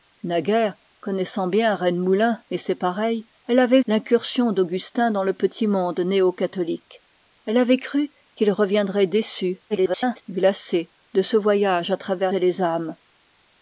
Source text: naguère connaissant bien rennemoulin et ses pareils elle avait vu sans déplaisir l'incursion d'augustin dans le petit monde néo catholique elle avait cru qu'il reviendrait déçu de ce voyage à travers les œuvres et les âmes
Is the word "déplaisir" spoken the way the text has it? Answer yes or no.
no